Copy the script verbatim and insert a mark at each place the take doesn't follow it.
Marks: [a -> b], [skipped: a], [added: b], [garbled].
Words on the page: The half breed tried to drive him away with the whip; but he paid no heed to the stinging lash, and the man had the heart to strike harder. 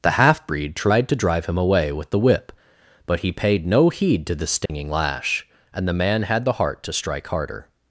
The half breed tried to drive him away with the whip; but he paid no heed to the stinging lash, and the man had the heart to strike harder.